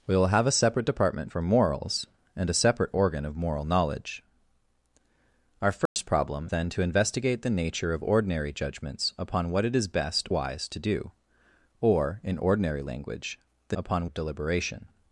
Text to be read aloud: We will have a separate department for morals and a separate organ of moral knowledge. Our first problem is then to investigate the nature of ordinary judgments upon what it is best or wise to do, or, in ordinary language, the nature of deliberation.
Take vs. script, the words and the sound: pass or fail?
fail